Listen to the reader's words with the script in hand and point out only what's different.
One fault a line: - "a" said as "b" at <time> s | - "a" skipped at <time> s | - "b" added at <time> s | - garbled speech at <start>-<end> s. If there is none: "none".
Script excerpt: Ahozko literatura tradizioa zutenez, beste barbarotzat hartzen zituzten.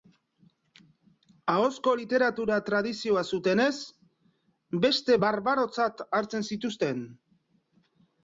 none